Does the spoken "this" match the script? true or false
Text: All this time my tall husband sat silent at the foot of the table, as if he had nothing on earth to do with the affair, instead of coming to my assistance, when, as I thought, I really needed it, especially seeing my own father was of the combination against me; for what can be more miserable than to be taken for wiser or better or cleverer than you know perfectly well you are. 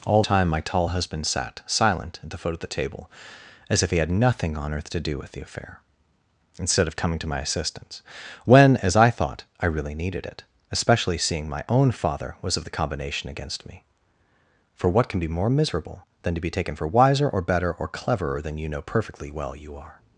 false